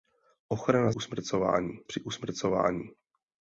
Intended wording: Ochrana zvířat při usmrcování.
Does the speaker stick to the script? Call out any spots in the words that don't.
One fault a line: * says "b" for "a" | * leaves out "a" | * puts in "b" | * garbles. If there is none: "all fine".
* says "usmrcování" for "zvířat"